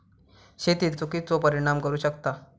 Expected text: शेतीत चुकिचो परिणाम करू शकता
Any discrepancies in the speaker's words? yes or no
no